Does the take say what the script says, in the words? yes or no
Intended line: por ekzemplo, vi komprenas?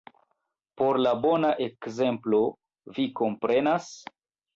no